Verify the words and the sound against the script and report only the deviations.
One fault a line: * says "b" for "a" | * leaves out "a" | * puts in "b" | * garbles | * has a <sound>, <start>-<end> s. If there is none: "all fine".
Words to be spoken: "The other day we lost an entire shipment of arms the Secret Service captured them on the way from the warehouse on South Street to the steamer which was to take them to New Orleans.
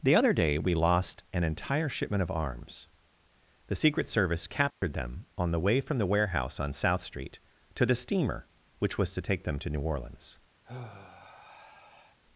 * has a dropout, 4.7-4.8 s
* has a sigh, 10.6-12.2 s